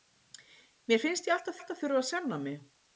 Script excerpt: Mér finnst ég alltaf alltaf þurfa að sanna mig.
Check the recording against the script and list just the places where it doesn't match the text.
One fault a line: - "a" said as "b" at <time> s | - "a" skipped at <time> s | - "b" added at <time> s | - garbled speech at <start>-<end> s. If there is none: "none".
none